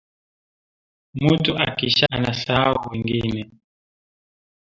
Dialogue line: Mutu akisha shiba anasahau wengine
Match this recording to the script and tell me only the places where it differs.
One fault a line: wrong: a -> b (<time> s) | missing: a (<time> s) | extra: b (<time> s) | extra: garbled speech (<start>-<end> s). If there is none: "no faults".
missing: shiba (2.1 s)